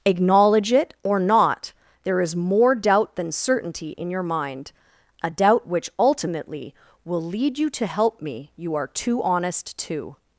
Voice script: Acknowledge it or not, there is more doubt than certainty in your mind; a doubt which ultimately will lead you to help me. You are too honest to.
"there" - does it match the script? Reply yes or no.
yes